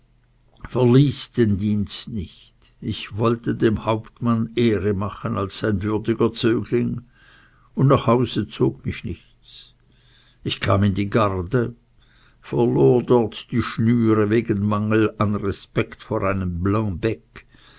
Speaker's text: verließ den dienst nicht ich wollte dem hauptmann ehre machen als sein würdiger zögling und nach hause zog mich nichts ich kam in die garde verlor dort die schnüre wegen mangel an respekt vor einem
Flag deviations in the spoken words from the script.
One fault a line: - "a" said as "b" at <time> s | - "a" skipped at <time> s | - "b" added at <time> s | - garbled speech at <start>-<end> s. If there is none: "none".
none